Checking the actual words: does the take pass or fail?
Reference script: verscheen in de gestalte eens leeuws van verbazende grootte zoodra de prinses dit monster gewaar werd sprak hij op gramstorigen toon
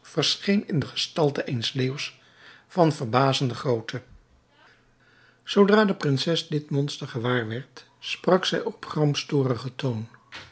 fail